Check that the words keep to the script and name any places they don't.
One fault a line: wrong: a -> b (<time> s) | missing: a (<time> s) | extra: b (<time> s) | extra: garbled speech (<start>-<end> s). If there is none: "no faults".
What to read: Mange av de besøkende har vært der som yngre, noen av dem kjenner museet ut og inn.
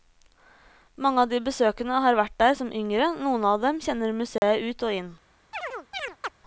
no faults